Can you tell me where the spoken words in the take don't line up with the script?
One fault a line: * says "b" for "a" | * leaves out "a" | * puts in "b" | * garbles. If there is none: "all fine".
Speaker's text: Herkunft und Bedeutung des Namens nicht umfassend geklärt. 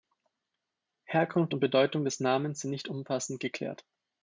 * puts in "sind"